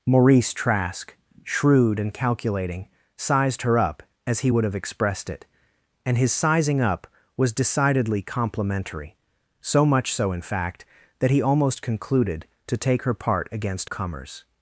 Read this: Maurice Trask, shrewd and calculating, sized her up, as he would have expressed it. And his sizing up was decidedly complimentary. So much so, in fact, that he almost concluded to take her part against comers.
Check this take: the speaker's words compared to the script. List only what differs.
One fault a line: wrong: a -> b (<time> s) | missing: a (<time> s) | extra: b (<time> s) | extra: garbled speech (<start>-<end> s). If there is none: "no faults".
no faults